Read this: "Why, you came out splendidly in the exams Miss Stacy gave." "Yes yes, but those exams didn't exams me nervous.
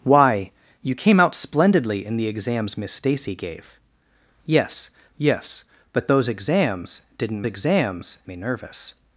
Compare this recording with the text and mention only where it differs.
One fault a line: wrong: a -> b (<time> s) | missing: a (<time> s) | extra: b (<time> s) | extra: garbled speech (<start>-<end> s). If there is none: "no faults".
no faults